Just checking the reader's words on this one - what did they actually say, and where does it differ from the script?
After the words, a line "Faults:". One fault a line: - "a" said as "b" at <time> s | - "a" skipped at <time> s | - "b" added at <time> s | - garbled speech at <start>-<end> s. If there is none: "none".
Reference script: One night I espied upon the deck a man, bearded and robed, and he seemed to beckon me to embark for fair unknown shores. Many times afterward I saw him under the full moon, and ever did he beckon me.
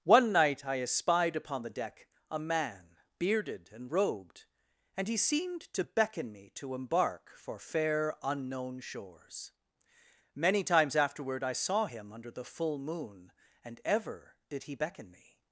One night I espied upon the deck a man, bearded and robed, and he seemed to beckon me to embark for fair unknown shores. Many times afterward I saw him under the full moon, and ever did he beckon me.
Faults:
none